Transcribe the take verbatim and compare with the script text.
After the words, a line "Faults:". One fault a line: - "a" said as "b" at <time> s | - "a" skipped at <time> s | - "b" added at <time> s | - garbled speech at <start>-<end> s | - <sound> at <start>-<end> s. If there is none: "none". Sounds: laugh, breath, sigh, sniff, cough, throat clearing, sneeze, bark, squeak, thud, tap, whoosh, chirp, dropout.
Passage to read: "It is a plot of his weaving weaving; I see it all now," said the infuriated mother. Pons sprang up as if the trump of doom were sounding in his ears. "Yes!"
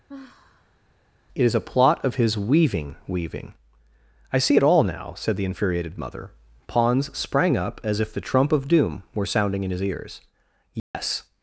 "It is a plot of his weaving weaving; I see it all now," said the infuriated mother. Pons sprang up as if the trump of doom were sounding in his ears. "Yes!"
Faults:
- sigh at 0.1-0.8 s
- dropout at 10.8-10.9 s